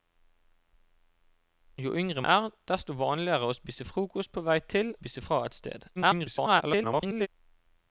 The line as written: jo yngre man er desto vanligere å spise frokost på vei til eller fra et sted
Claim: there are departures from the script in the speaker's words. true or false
true